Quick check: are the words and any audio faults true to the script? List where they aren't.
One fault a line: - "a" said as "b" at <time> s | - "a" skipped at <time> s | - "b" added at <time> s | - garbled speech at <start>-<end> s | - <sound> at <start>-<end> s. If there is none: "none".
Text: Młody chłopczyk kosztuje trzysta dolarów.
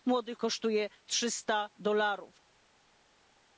- "chłopczyk" skipped at 0.3 s